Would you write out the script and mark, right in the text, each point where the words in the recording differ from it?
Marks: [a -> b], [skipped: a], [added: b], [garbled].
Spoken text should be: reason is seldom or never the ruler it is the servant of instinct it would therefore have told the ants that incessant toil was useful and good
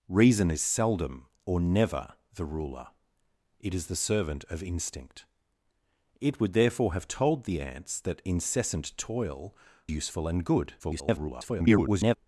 reason is seldom or never the ruler it is the servant of instinct it would therefore have told the ants that incessant toil [skipped: was] useful and good [garbled]